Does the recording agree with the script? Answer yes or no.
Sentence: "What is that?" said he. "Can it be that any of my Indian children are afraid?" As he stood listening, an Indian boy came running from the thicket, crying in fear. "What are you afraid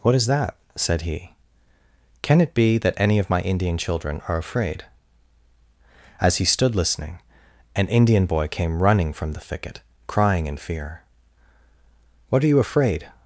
yes